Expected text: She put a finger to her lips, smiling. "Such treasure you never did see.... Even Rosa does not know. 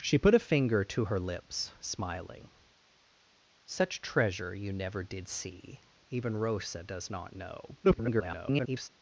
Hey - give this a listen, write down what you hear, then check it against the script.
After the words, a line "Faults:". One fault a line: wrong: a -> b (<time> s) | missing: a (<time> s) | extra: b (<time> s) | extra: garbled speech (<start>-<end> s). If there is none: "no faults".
She put a finger to her lips, smiling. "Such treasure you never did see.... Even Rosa does not know. [garbled]
Faults:
extra: garbled speech (7.8-8.9 s)